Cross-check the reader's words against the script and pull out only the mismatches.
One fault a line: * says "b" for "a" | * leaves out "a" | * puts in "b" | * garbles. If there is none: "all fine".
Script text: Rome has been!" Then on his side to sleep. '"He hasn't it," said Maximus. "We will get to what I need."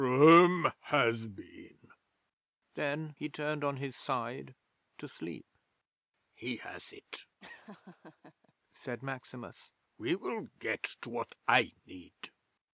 * puts in "he turned"
* says "has" for "hasn't"